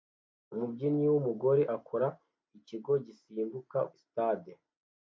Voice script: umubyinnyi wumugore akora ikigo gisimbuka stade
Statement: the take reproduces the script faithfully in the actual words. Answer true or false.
true